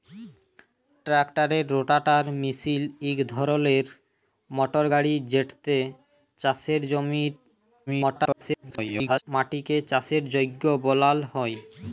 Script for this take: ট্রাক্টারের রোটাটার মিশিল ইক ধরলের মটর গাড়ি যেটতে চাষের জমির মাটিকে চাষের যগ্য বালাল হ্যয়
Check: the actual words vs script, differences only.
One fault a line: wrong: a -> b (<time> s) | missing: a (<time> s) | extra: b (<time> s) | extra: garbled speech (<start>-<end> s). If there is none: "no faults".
extra: garbled speech (7.9-9.2 s)